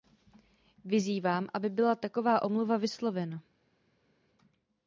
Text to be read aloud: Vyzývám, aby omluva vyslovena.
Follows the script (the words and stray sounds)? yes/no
no